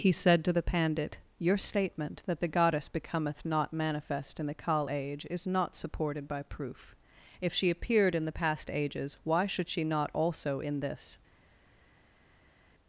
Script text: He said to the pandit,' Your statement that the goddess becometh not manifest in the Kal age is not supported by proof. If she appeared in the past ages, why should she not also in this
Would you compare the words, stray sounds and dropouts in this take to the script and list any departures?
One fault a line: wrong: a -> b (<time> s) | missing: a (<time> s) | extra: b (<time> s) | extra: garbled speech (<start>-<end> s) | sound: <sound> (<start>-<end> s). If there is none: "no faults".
no faults